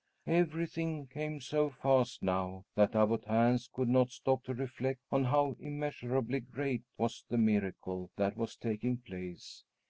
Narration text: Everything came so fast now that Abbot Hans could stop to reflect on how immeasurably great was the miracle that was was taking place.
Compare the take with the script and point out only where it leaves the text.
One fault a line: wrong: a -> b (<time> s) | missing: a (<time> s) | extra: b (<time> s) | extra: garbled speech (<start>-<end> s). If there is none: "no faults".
extra: not (3.9 s)
missing: was (8.6 s)